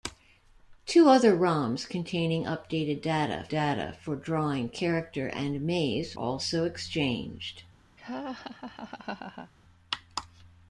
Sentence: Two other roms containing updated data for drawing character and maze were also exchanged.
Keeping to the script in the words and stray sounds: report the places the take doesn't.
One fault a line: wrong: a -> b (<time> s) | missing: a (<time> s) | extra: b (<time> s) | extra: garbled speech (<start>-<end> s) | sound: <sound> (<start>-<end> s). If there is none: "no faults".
extra: data (3.5 s)
missing: were (6.2 s)
sound: laugh (8.0-9.5 s)